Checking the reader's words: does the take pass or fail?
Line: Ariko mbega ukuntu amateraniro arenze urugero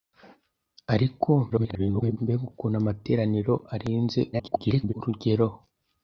fail